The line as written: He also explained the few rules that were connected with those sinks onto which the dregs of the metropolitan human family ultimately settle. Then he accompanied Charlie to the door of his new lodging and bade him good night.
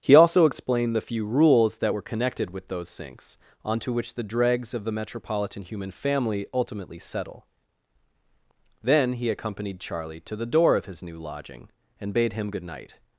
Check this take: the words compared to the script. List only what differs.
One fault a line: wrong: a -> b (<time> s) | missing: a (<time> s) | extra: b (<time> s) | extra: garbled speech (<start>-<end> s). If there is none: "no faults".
no faults